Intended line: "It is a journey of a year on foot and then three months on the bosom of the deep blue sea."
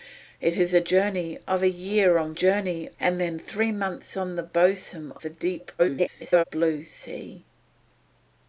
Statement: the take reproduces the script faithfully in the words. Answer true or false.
false